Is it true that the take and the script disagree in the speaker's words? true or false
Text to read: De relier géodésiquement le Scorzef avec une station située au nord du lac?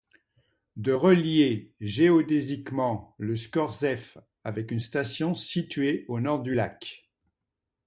false